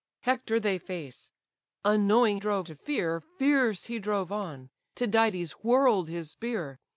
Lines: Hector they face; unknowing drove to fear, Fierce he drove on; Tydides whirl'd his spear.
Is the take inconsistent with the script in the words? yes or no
no